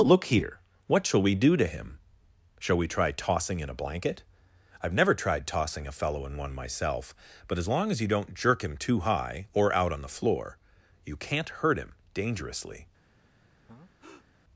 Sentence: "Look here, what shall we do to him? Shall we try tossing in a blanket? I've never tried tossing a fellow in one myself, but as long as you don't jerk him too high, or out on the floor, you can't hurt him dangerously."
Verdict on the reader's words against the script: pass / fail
pass